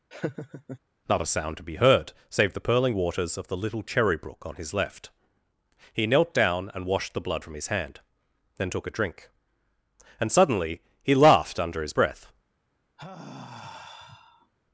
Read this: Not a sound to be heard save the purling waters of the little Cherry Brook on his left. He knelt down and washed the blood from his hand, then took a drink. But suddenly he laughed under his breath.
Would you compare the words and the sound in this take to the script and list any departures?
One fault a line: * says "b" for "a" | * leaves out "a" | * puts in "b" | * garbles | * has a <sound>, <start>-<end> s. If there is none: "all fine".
* has a laugh, 0.1-0.8 s
* says "And" for "But"
* has a sigh, 13.0-14.5 s